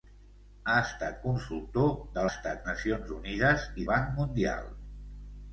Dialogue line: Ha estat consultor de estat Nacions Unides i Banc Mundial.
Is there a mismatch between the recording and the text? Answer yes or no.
no